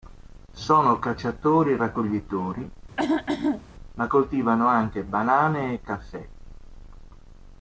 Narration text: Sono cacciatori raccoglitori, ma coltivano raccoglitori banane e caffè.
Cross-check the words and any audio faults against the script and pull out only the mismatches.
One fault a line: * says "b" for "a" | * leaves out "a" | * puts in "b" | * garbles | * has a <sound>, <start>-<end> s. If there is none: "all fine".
* has a throat clearing, 3.0-3.7 s
* says "anche" for "raccoglitori"